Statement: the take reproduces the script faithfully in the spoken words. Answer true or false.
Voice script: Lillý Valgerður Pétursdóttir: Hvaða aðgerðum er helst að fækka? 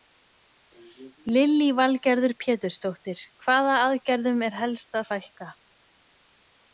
true